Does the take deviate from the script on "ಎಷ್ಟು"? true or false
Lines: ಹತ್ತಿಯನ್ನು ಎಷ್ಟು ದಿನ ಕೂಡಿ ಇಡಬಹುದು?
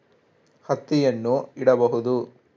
true